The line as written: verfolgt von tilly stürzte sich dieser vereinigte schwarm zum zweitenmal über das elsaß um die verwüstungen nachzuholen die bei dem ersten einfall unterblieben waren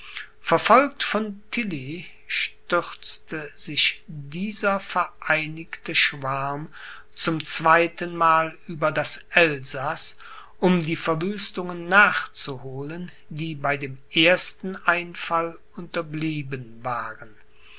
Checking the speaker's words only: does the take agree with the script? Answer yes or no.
yes